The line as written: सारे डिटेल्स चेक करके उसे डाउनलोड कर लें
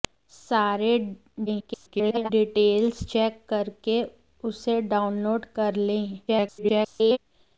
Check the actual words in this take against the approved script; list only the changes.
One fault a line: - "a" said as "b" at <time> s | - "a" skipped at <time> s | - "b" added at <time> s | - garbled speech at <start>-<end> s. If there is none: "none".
- garbled speech at 1.5-2.3 s
- garbled speech at 6.3-7.2 s